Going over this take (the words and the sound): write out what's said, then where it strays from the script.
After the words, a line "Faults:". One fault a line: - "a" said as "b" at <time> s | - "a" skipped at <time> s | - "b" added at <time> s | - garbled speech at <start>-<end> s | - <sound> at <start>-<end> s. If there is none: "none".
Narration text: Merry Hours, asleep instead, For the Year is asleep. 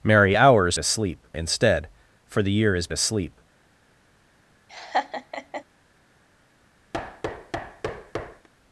Merry Hours, asleep instead, For the Year is asleep.
Faults:
- laugh at 4.7-5.6 s
- thud at 6.9-8.5 s